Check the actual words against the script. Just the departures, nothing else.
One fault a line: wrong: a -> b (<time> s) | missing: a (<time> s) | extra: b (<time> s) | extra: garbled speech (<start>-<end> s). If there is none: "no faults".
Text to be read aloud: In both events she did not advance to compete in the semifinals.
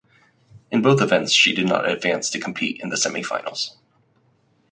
no faults